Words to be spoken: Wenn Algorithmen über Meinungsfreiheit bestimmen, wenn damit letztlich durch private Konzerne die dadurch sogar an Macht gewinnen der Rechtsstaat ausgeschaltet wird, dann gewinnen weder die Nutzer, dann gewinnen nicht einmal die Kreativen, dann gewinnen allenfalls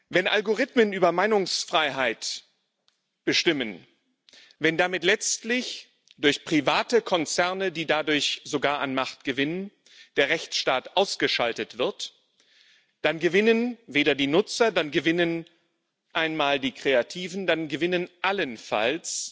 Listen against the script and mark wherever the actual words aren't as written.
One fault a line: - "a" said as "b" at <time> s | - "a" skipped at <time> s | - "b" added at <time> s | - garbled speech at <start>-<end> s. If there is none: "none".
- "nicht" skipped at 15.4 s